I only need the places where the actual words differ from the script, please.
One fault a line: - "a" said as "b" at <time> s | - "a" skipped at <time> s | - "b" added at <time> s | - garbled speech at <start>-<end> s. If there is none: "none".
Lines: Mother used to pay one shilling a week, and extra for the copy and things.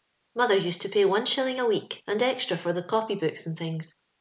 - "books" added at 3.2 s